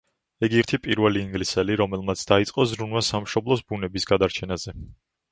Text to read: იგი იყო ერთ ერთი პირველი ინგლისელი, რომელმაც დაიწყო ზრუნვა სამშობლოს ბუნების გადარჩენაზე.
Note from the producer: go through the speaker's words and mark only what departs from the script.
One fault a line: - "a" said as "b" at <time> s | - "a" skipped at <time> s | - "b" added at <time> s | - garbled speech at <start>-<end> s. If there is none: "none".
- "იყო ერთ" skipped at 0.6 s